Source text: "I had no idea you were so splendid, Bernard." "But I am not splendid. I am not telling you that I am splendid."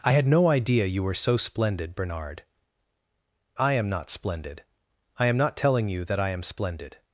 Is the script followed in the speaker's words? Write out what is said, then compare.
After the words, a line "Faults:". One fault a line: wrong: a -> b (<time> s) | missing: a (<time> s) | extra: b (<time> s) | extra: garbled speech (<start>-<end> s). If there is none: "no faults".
"I had no idea you were so splendid, Bernard." "I am not splendid. I am not telling you that I am splendid."
Faults:
missing: But (2.4 s)